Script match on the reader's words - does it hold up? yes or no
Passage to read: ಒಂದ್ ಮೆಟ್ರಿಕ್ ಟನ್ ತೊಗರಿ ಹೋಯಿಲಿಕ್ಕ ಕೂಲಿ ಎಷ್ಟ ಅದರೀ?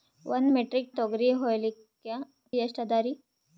no